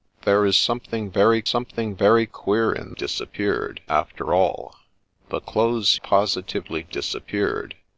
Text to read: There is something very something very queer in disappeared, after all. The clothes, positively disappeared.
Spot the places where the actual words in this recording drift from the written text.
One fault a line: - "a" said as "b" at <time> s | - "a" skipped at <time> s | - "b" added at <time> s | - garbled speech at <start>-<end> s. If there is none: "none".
none